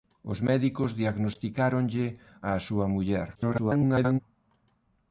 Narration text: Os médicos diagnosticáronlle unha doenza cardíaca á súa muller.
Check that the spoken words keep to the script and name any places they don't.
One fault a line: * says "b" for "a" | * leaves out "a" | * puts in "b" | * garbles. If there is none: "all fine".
* leaves out "unha doenza cardíaca"
* garbles